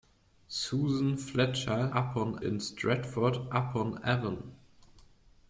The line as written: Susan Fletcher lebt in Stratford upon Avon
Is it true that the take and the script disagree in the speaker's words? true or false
true